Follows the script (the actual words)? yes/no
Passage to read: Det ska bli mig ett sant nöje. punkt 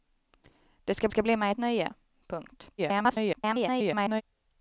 no